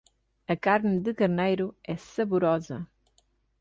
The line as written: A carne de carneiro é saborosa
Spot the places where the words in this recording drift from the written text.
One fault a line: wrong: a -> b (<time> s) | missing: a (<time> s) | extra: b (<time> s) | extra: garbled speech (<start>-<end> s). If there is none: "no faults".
no faults